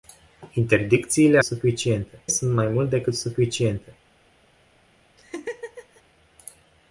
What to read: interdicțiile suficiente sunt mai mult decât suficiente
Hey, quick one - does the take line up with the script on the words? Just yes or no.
yes